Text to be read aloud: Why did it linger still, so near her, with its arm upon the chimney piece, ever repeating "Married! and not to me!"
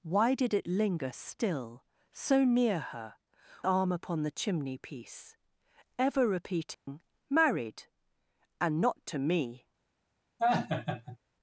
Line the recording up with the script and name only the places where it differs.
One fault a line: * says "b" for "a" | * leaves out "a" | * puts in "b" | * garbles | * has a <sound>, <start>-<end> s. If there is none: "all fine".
* leaves out "with its"
* has a dropout, 6.7-6.9 s
* has a laugh, 10.4-11.2 s